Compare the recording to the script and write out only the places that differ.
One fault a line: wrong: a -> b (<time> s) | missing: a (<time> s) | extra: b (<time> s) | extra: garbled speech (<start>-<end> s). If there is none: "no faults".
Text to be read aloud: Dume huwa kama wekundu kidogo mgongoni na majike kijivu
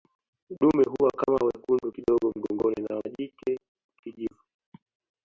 no faults